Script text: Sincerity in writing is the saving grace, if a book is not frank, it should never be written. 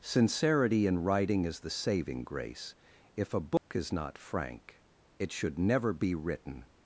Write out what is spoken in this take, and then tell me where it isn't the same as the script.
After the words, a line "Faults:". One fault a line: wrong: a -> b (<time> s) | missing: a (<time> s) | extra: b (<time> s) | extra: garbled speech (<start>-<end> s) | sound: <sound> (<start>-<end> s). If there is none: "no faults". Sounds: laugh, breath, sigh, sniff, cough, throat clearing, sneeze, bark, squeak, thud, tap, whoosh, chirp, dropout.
Sincerity in writing is the saving grace, if a book is not frank, it should never be written.
Faults:
sound: dropout (3.6-3.7 s)